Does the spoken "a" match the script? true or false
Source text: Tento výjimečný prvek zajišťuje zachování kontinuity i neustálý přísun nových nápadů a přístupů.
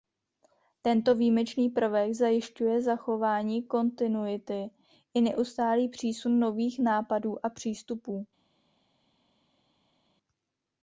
true